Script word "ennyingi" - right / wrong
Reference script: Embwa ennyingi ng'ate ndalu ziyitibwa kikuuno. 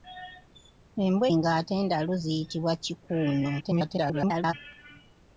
wrong